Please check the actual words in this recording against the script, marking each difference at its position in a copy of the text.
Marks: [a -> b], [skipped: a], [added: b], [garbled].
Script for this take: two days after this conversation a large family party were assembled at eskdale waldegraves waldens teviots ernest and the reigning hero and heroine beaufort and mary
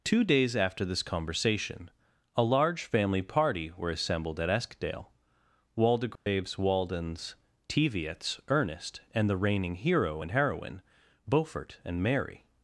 two days after this conversation a large family party were assembled at eskdale waldegraves waldens teviots ernest and the reigning hero and heroine beaufort and mary